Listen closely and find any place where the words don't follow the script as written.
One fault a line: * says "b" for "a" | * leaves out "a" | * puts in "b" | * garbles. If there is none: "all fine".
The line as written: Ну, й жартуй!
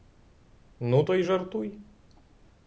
* puts in "то"